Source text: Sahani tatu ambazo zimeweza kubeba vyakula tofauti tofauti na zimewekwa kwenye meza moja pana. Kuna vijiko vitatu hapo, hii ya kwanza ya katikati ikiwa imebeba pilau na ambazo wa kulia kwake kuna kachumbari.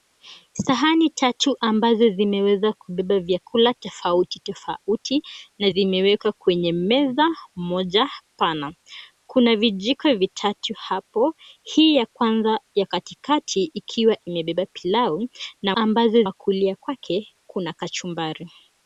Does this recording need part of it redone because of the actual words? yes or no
no